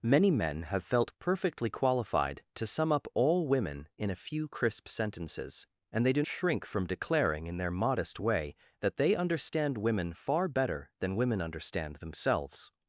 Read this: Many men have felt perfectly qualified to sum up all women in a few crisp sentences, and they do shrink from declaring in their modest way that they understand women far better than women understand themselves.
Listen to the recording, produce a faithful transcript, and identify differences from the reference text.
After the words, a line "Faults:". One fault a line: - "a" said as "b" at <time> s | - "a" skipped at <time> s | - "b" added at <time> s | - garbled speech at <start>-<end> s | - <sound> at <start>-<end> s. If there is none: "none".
Many men have felt perfectly qualified to sum up all women in a few crisp sentences, and they do shrink from declaring in their modest way that they understand women far better than women understand themselves.
Faults:
none